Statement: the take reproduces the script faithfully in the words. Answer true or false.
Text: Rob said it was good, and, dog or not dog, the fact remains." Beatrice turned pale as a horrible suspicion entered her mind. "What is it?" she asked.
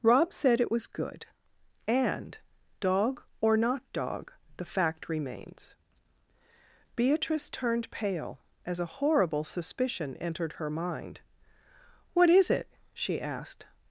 true